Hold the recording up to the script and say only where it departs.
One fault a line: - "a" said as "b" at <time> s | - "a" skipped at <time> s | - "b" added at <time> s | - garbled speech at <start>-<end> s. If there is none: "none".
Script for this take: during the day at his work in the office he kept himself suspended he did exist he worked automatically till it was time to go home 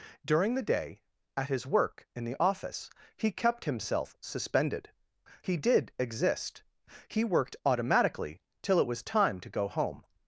none